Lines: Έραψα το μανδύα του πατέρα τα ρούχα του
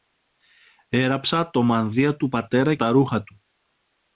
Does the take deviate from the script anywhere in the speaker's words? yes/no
no